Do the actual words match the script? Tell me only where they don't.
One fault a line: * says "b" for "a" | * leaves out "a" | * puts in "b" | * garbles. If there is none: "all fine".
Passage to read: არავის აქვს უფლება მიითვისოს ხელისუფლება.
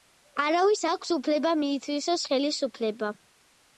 all fine